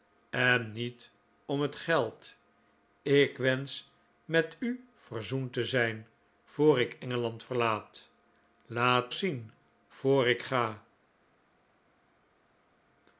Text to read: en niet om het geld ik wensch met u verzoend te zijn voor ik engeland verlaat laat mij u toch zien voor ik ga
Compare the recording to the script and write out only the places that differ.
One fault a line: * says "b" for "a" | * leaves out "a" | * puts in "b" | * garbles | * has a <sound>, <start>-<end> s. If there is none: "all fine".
* leaves out "mij u toch"